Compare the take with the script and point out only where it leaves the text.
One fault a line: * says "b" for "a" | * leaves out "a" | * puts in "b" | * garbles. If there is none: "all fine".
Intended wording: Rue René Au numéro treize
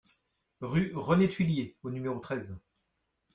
* puts in "Thuillier"